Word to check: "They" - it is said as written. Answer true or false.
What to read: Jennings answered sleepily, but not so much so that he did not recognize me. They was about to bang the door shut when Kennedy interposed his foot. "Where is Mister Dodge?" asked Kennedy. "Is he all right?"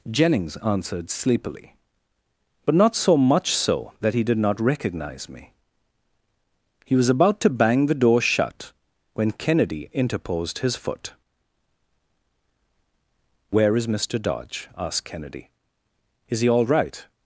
false